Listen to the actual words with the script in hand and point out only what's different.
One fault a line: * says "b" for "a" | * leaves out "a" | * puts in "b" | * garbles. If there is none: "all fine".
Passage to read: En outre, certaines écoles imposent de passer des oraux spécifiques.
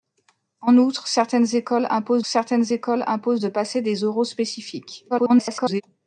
* puts in "certaines écoles imposent"
* garbles